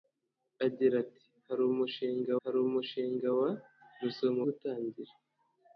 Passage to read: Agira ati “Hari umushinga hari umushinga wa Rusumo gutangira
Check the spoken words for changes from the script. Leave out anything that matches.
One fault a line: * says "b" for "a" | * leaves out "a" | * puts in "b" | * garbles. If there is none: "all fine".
all fine